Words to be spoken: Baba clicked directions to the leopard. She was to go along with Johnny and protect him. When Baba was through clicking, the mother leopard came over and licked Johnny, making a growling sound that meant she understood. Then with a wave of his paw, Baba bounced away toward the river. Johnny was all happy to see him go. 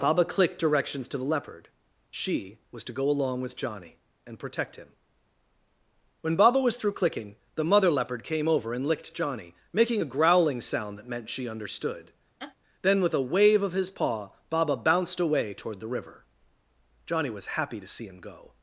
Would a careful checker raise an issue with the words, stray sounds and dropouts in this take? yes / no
yes